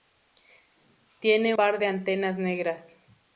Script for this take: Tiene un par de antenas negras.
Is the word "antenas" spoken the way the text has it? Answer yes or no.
yes